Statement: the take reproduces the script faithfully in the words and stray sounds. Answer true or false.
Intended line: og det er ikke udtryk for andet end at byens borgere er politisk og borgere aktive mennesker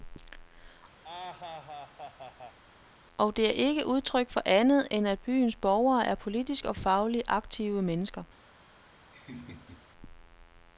false